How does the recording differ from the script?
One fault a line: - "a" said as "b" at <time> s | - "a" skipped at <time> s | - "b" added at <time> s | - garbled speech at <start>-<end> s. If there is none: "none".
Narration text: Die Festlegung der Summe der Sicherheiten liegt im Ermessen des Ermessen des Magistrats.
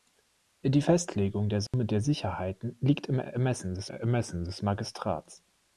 none